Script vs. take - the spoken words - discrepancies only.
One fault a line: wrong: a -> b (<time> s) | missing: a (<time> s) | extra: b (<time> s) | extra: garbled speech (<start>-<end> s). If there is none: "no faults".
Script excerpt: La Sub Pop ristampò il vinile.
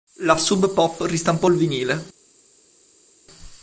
no faults